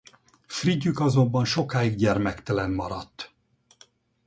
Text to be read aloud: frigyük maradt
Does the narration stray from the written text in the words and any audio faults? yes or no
yes